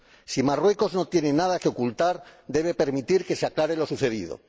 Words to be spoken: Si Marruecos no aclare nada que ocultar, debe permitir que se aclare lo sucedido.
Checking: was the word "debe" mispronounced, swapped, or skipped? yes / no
no